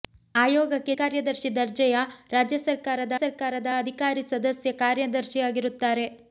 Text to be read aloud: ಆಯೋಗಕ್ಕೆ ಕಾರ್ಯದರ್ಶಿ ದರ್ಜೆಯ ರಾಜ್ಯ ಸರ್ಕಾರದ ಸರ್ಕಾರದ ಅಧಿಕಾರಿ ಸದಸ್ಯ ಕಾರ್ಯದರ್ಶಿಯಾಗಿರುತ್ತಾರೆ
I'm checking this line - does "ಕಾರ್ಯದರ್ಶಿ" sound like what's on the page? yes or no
yes